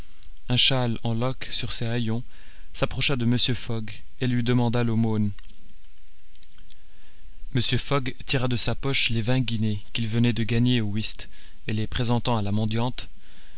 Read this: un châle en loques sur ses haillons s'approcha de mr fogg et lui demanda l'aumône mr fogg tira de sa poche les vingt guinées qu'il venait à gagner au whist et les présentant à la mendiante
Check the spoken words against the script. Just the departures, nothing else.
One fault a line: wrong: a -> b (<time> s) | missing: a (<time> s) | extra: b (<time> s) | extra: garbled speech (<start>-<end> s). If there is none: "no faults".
wrong: à -> de (10.3 s)